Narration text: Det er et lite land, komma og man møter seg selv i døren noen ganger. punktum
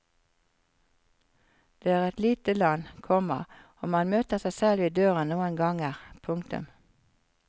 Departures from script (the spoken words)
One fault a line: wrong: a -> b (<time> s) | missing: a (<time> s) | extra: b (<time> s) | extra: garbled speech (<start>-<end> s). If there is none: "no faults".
no faults